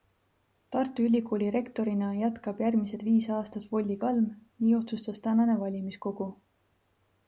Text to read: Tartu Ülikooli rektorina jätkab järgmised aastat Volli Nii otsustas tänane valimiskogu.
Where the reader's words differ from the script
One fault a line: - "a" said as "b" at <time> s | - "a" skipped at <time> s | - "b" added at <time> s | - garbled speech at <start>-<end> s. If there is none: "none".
- "viis" added at 3.1 s
- "Kalm" added at 4.1 s